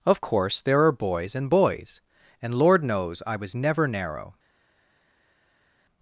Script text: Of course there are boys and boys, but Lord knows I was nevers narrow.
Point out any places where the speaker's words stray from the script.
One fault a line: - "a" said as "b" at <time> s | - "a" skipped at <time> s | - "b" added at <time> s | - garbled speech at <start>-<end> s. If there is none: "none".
- "but" said as "and" at 2.4 s
- "nevers" said as "never" at 3.5 s